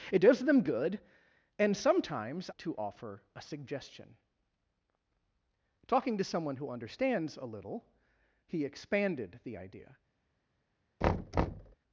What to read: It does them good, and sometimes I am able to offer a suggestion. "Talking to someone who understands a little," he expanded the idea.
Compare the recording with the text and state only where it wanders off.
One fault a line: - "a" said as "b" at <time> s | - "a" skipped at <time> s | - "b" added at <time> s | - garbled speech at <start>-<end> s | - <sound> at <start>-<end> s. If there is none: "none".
- "I am able" skipped at 2.5 s
- thud at 11.0-11.8 s